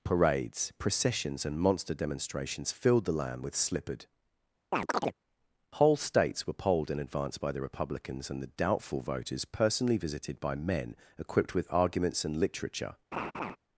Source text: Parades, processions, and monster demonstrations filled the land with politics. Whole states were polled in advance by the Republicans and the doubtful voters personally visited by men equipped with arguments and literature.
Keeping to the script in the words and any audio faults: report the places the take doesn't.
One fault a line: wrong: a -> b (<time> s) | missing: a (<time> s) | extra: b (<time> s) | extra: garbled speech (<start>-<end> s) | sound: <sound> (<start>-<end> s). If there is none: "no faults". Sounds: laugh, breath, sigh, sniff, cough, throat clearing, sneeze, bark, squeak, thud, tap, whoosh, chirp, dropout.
wrong: politics -> slippered (3.5 s)
sound: chirp (4.7-5.2 s)
sound: laugh (13.1-13.6 s)